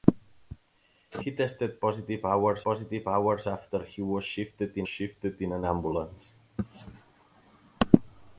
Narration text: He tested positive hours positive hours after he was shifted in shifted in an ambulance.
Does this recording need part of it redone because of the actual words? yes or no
no